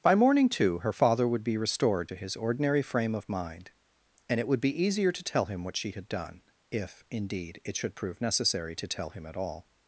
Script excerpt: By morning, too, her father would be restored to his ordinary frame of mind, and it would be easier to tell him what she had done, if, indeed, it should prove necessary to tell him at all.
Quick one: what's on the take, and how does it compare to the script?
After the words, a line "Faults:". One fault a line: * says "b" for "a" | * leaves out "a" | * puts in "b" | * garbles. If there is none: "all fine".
By morning, too, her father would be restored to his ordinary frame of mind, and it would be easier to tell him what she had done, if, indeed, it should prove necessary to tell him at all.
Faults:
all fine